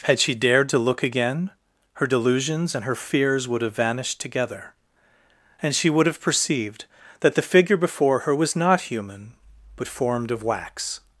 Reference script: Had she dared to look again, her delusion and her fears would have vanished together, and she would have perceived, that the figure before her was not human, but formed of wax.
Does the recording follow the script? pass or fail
fail